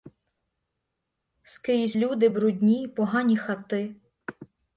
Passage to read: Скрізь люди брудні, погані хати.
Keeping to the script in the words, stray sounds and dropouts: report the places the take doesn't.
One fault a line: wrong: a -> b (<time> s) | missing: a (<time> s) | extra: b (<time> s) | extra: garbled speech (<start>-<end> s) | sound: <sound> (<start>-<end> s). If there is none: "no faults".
no faults